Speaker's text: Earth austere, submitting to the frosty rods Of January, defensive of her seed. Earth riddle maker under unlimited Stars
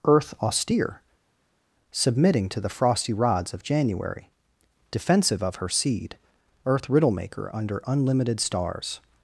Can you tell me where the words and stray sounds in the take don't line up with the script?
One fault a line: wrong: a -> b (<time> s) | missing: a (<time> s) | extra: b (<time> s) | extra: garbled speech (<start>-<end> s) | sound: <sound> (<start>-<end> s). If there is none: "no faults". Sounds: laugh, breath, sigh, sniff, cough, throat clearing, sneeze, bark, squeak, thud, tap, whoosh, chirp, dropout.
no faults